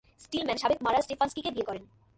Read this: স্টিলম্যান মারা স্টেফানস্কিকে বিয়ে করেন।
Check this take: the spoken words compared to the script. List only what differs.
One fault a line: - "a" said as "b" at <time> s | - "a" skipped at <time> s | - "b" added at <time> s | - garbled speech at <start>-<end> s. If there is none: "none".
- "সাবেক" added at 0.6 s